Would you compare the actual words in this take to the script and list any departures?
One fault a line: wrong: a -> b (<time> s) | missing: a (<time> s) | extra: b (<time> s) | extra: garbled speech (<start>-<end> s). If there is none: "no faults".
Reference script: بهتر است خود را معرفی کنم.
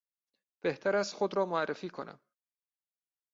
no faults